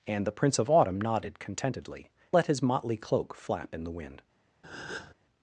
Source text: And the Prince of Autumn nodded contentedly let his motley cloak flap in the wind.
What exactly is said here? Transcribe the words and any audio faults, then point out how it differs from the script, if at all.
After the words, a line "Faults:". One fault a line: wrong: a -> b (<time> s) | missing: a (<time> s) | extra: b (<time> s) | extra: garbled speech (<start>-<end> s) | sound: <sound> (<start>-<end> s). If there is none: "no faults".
And the Prince of Autumn nodded contentedly let his motley cloak flap in the wind.
Faults:
sound: breath (4.6-5.1 s)